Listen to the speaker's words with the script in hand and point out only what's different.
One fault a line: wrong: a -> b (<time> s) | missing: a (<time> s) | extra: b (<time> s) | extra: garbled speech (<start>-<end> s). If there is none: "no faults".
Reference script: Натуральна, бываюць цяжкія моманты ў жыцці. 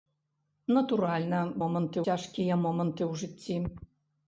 wrong: бываюць -> моманты (1.6 s)